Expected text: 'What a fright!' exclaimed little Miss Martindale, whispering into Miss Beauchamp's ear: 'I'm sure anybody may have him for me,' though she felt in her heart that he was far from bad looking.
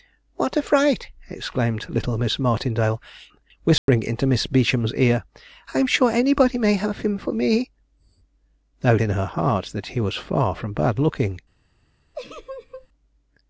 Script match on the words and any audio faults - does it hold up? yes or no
no